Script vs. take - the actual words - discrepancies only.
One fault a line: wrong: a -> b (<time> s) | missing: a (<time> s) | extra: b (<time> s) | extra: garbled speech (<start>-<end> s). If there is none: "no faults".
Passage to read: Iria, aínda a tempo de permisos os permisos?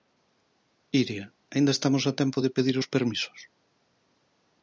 extra: estamos (1.8 s)
wrong: permisos -> pedir (2.6 s)